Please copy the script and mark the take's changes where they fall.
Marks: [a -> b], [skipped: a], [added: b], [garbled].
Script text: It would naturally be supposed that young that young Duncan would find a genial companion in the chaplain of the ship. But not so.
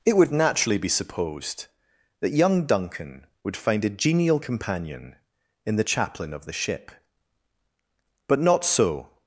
It would naturally be supposed that young [skipped: that young] Duncan would find a genial companion in the chaplain of the ship. But not so.